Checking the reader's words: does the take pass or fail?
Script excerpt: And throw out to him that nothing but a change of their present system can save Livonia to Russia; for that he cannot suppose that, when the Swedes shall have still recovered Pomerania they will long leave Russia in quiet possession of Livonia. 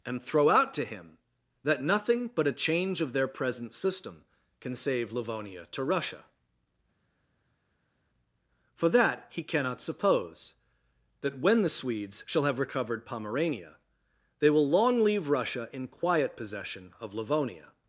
fail